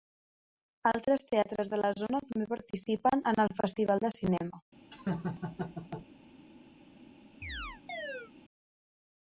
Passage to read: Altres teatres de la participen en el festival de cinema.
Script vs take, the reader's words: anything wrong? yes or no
yes